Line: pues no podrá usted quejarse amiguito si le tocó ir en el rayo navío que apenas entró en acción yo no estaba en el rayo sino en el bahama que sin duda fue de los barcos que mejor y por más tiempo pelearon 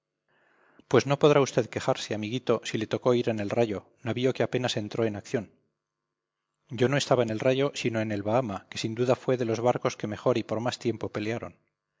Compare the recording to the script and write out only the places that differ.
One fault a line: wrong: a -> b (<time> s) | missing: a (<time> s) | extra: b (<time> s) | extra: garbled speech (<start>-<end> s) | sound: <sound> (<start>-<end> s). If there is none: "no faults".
no faults